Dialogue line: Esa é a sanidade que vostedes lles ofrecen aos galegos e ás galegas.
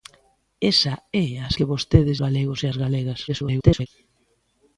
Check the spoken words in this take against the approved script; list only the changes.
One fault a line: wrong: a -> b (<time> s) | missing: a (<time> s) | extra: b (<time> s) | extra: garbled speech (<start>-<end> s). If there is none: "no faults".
missing: sanidade (1.5 s)
missing: lles ofrecen aos (2.2 s)
extra: garbled speech (3.3-3.9 s)